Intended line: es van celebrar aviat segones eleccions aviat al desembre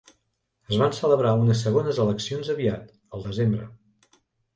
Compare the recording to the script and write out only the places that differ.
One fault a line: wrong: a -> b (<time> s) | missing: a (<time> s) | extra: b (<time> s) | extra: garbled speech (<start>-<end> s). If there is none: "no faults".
wrong: aviat -> unes (1.4 s)